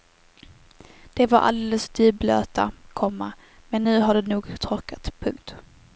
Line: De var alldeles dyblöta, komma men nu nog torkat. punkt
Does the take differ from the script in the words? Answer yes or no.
yes